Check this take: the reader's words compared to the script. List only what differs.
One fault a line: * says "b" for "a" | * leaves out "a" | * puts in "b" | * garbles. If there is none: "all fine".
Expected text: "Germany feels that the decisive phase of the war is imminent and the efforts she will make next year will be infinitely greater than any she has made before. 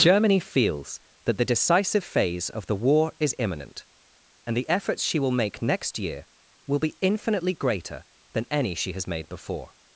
all fine